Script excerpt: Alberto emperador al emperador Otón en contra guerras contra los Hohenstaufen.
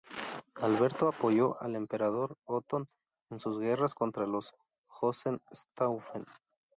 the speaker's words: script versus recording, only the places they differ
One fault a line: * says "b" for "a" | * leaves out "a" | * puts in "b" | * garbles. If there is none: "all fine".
* says "apoyó" for "emperador"
* says "sus" for "contra"